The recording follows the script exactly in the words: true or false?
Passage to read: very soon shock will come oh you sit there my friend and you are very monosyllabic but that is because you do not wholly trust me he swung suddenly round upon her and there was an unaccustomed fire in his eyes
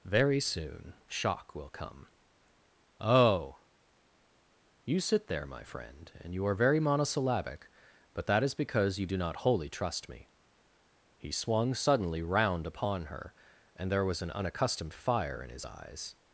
true